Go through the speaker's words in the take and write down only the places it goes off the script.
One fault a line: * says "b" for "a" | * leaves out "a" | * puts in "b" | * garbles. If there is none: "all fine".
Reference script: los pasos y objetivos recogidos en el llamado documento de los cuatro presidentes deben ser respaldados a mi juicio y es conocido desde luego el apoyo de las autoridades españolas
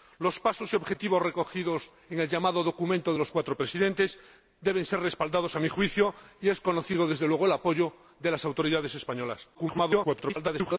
* garbles